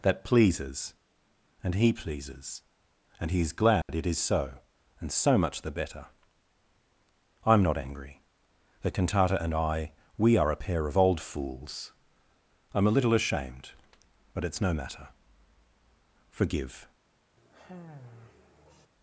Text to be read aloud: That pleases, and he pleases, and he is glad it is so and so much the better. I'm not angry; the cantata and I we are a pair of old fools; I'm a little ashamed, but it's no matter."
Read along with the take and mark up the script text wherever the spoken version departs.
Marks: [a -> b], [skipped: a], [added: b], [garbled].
That pleases, and he pleases, and he is glad it is so and so much the better. I'm not angry; the cantata and I we are a pair of old fools; I'm a little ashamed, but it's no matter." [added: Forgive]